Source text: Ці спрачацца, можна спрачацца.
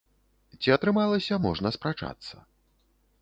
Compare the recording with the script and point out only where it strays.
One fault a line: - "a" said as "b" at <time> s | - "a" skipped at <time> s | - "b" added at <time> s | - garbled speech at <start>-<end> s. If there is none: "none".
- "спрачацца" said as "атрымалася" at 0.7 s